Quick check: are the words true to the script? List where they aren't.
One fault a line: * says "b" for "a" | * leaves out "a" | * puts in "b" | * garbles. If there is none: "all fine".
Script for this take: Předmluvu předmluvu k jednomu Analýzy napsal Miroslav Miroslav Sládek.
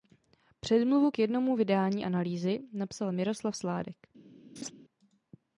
* leaves out "předmluvu"
* puts in "vydání"
* leaves out "Miroslav"